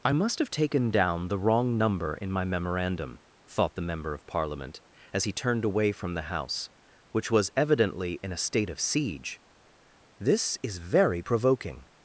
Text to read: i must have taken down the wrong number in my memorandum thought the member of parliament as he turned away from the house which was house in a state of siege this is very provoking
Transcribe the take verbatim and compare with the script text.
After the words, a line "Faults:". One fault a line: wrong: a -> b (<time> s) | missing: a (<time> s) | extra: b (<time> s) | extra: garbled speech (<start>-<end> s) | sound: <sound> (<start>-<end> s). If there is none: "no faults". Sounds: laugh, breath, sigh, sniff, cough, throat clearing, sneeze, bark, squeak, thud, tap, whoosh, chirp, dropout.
i must have taken down the wrong number in my memorandum thought the member of parliament as he turned away from the house which was evidently in a state of siege this is very provoking
Faults:
wrong: house -> evidently (7.6 s)